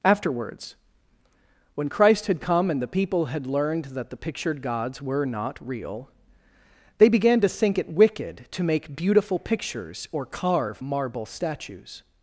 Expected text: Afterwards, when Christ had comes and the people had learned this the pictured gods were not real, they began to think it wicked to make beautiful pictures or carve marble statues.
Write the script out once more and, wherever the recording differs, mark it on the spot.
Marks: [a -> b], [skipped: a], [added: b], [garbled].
Afterwards, when Christ had [comes -> come] and the people had learned [this -> that] the pictured gods were not real, they began to think it wicked to make beautiful pictures or carve marble statues.